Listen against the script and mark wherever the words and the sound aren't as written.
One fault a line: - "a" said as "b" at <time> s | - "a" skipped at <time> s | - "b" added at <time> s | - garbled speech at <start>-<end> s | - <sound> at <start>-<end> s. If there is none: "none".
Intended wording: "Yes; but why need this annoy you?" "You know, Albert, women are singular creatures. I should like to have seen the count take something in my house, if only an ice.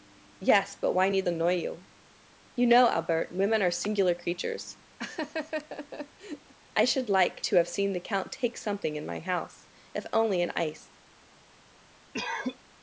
- "this" skipped at 1.3 s
- laugh at 5.0-6.5 s
- cough at 12.1-12.6 s